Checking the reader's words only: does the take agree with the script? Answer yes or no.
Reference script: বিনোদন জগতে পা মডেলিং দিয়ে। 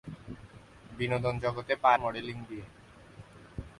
yes